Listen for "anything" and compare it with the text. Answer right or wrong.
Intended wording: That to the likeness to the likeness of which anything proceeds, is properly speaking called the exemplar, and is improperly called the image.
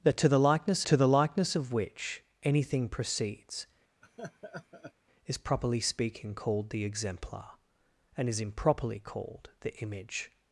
right